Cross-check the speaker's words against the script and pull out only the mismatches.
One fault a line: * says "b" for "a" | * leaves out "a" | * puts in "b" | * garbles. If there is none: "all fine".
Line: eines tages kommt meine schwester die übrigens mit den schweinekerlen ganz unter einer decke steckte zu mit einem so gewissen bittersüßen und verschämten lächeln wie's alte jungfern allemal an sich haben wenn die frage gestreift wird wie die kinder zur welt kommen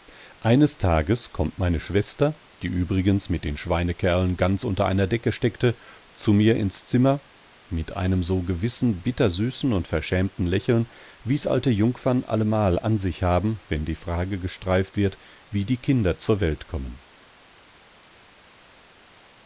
* puts in "mir ins zimmer"